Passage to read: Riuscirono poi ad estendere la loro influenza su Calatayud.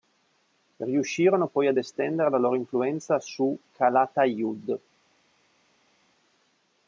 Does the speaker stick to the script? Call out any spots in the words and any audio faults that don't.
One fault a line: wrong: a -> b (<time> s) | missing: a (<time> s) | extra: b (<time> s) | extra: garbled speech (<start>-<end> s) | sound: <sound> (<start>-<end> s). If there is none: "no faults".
no faults